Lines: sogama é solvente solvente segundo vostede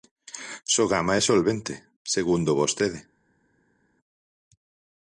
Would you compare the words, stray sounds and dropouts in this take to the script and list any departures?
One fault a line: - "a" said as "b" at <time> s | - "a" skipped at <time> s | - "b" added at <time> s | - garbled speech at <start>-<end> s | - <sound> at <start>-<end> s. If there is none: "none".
- "solvente" skipped at 1.7 s